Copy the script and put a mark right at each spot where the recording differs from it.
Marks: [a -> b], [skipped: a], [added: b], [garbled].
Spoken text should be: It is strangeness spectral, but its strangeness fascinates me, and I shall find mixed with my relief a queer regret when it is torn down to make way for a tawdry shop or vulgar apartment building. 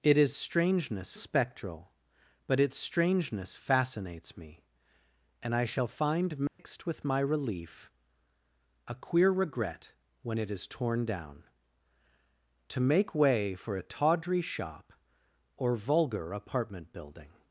It is strangeness spectral, but its strangeness fascinates me, and I shall find mixed with my relief a queer regret when it is torn down to make way for a tawdry shop or vulgar apartment building.